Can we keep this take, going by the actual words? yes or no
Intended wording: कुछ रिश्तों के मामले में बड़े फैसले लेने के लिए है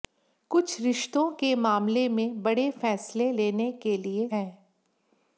yes